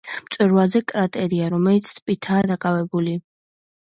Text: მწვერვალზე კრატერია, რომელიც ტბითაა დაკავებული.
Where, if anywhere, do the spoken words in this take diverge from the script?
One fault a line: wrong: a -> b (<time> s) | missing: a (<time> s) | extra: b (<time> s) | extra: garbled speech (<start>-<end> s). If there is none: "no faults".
no faults